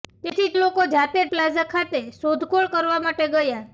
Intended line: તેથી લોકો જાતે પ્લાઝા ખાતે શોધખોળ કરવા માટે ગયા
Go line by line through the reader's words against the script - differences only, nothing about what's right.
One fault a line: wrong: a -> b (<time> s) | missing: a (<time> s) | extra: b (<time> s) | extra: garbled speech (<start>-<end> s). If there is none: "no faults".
no faults